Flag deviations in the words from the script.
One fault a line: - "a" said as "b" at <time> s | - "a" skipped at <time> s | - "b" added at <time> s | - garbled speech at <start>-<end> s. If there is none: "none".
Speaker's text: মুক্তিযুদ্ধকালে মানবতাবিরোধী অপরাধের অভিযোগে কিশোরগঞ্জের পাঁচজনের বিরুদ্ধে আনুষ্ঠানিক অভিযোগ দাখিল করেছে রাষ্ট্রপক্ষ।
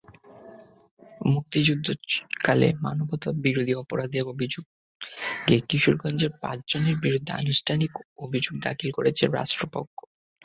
none